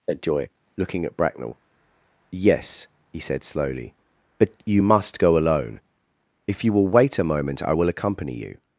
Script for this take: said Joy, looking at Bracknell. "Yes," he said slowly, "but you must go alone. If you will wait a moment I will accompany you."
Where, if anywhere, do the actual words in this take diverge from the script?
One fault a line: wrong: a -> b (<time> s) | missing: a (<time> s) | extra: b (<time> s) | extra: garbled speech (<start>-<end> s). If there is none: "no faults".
no faults